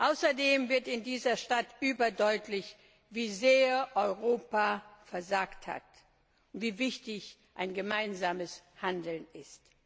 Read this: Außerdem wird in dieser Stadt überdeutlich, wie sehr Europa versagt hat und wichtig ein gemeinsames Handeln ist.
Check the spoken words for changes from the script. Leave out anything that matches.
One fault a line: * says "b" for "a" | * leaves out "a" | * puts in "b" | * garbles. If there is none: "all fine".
* puts in "wie"